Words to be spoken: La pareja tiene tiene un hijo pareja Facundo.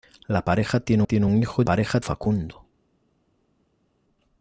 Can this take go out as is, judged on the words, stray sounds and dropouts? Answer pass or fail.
pass